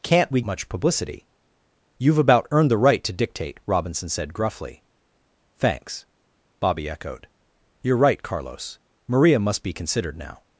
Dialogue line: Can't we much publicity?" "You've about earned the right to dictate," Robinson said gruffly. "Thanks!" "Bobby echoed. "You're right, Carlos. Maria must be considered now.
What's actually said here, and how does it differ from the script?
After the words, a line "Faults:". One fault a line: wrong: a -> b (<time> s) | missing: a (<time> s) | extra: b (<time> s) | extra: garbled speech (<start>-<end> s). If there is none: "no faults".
Can't we much publicity?" "You've about earned the right to dictate," Robinson said gruffly. "Thanks!" "Bobby echoed. "You're right, Carlos. Maria must be considered now.
Faults:
no faults